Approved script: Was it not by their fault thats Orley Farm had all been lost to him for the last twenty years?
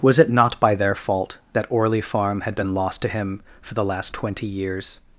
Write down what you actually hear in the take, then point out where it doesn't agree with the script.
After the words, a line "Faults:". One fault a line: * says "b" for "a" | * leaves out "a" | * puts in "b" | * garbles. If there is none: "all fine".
Was it not by their fault that Orley Farm had been lost to him for the last twenty years?
Faults:
* says "that" for "thats"
* leaves out "all"